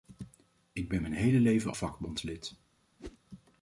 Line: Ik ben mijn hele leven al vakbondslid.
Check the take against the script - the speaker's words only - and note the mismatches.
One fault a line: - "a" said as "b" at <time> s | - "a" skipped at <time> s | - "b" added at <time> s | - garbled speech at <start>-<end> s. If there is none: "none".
- "al" skipped at 1.7 s